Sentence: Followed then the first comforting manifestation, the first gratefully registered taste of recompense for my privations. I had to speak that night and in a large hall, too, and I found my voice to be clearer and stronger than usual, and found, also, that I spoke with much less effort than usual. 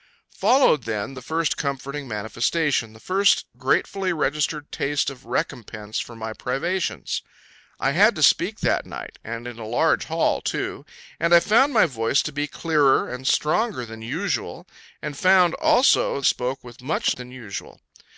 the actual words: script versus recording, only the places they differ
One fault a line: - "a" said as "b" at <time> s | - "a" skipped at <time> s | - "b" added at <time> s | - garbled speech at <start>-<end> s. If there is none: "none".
- "that I" skipped at 16.2 s
- "less effort" skipped at 17.1 s